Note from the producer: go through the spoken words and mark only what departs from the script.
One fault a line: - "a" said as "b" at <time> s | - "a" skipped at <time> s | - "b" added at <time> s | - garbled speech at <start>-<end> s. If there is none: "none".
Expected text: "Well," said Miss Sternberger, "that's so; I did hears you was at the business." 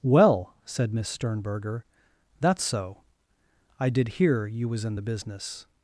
- "hears" said as "hear" at 4.2 s
- "at" said as "in" at 4.8 s